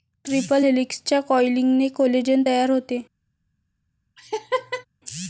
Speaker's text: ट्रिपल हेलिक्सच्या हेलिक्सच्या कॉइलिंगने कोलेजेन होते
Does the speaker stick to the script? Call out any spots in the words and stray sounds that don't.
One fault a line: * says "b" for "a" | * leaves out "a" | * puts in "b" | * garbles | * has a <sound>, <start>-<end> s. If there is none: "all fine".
* leaves out "हेलिक्सच्या"
* puts in "तयार"
* has a laugh, 4.2-4.9 s